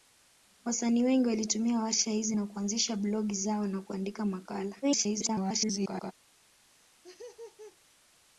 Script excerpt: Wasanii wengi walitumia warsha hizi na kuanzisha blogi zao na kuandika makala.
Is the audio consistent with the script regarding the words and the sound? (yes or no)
no